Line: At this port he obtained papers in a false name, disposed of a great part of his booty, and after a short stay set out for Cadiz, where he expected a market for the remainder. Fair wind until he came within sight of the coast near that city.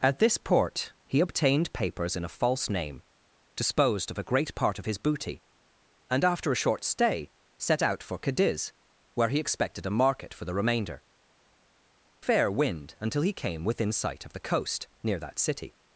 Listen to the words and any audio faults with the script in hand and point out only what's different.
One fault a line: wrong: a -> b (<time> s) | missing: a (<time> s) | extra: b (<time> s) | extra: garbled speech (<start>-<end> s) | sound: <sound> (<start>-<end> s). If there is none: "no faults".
no faults